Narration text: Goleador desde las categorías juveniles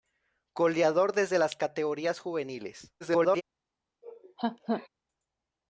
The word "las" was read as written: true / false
true